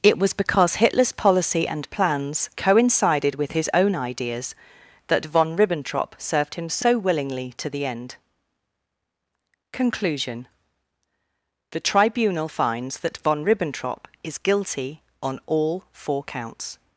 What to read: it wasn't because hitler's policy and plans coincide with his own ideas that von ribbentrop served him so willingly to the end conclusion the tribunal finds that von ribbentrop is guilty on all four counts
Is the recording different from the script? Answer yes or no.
yes